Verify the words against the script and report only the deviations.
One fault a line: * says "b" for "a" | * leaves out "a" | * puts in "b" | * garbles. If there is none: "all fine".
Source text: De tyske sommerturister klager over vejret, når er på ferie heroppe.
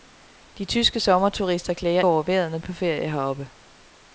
all fine